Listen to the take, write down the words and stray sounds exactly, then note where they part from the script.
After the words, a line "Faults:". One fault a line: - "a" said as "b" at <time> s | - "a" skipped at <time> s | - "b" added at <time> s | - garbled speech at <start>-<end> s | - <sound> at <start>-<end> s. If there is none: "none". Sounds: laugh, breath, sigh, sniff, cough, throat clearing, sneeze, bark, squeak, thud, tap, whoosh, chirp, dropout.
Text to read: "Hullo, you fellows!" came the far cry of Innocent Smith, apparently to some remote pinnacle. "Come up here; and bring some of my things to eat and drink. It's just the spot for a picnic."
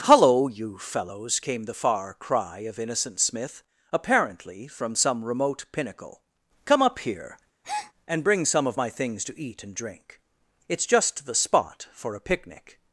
"Hullo, you fellows!" came the far cry of Innocent Smith, apparently from some remote pinnacle. "Come up here; and bring some of my things to eat and drink. It's just the spot for a picnic."
Faults:
- "to" said as "from" at 4.7 s
- breath at 7.6-7.9 s